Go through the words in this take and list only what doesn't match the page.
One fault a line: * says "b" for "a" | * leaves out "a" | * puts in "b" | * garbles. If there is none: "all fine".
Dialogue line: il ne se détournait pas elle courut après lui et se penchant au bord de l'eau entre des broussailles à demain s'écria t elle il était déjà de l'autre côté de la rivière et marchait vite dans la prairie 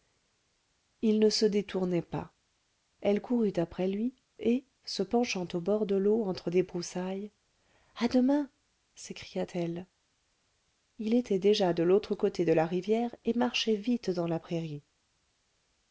all fine